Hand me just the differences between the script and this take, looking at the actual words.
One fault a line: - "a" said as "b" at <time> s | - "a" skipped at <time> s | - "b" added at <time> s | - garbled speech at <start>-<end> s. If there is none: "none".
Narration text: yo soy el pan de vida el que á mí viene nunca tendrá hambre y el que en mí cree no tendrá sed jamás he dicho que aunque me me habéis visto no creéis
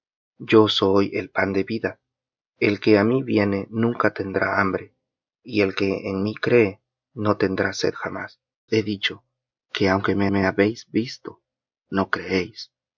none